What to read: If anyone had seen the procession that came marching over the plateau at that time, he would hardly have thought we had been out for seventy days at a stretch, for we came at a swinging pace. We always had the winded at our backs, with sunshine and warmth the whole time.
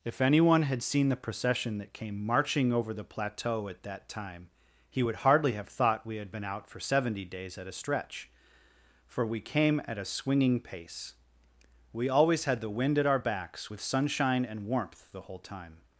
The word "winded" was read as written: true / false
false